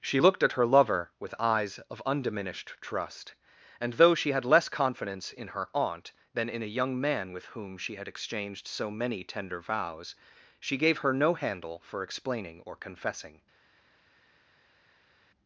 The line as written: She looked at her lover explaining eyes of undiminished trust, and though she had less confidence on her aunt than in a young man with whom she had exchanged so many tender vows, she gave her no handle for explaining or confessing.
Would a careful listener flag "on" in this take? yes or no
yes